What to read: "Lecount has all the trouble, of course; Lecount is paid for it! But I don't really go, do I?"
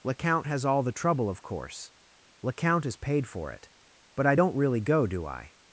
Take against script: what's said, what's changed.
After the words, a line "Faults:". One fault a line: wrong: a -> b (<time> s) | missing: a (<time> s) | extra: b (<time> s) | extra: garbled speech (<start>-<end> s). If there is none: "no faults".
"Lecount has all the trouble, of course; Lecount is paid for it! But I don't really go, do I?"
Faults:
no faults